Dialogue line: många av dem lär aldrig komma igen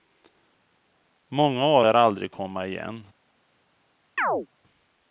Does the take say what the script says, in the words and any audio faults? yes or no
no